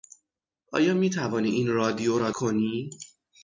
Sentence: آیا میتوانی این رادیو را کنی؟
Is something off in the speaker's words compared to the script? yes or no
no